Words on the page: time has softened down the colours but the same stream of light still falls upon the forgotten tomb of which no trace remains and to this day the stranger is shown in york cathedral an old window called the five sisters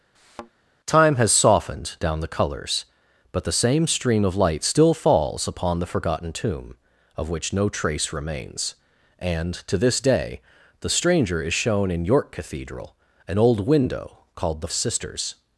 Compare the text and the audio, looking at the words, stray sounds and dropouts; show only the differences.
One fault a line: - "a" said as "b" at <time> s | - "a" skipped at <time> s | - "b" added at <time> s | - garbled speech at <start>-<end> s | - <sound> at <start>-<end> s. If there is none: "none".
- thud at 0.2-0.5 s
- "five" skipped at 14.7 s